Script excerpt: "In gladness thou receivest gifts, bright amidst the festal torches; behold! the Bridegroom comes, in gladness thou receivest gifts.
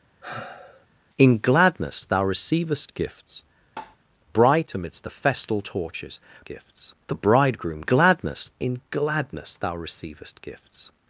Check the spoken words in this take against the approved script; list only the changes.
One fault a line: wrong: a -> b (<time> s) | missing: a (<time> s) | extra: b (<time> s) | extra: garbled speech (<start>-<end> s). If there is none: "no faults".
wrong: behold -> gifts (6.4 s)
wrong: comes -> gladness (7.8 s)